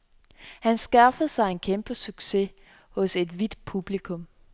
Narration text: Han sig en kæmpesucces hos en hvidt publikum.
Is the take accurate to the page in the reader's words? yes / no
no